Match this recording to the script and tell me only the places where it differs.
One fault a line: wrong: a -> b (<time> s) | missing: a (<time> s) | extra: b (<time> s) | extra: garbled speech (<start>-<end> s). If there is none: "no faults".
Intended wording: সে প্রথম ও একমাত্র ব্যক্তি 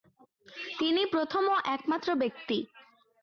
wrong: সে -> তিনি (0.8 s)